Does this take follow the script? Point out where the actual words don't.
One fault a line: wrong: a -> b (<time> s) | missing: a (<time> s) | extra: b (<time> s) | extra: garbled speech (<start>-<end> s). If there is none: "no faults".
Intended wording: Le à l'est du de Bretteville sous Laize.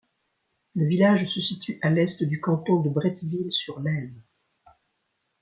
extra: village se situe (0.9 s)
extra: canton (2.4 s)
wrong: sous -> sur (3.5 s)